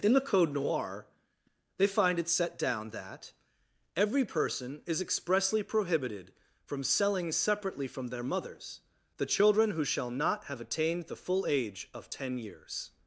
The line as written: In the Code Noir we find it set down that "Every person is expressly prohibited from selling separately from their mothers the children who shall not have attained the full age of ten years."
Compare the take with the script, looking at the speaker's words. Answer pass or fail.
fail